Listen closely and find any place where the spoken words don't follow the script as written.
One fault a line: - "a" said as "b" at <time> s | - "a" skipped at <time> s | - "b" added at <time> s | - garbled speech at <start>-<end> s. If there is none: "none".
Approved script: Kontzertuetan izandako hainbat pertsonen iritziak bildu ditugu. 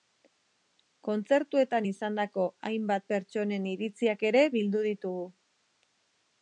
- "ere" added at 4.3 s